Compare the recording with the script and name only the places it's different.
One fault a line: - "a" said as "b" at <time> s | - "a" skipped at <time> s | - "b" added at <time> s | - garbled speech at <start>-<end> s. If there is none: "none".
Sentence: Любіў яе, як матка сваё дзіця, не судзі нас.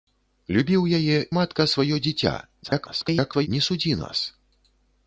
- "як" skipped at 1.2 s
- garbled speech at 2.6-3.5 s